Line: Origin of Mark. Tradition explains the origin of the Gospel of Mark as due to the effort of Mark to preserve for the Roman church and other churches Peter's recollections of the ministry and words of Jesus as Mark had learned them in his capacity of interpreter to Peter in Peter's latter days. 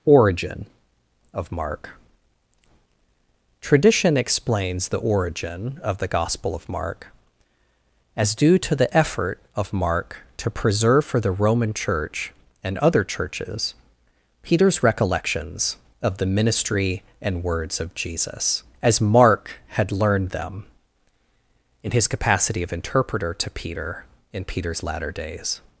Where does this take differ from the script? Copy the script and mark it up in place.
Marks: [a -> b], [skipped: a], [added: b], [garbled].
Origin of Mark. Tradition explains the origin of the Gospel of Mark as due to the effort of Mark to preserve for the Roman church and other churches Peter's recollections of the ministry and words of Jesus as Mark had learned them in his capacity of interpreter to Peter in Peter's latter days.